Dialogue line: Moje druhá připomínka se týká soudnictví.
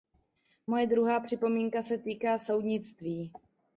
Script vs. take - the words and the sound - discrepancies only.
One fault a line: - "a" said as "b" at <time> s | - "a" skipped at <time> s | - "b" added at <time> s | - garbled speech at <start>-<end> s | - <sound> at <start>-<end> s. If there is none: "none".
none